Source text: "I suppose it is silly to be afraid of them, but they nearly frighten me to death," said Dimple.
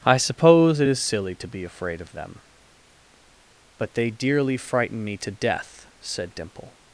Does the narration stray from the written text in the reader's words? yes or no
yes